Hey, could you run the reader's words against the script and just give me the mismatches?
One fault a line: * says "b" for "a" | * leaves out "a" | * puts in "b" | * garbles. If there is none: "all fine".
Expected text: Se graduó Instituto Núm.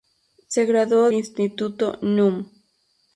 all fine